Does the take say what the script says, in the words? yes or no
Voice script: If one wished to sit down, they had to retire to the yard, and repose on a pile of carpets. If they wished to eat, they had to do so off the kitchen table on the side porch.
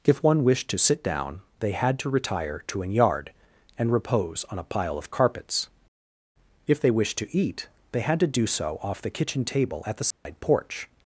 no